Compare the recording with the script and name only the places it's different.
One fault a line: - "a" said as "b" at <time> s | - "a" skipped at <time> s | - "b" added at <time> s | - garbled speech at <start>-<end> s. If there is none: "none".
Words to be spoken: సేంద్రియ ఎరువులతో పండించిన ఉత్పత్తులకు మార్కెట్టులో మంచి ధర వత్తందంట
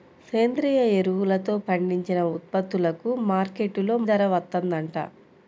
- "మంచి" skipped at 4.0 s